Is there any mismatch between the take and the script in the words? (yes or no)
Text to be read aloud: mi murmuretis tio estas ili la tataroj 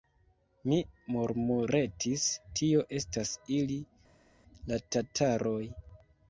no